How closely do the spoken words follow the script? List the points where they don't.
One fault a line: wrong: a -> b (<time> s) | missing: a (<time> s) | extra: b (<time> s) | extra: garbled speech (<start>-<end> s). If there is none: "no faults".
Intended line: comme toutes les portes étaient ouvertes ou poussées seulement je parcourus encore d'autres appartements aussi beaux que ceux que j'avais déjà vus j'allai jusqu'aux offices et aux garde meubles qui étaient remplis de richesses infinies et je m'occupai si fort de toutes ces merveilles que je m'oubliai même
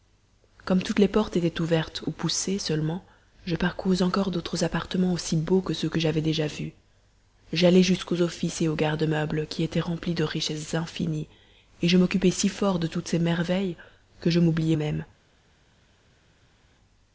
no faults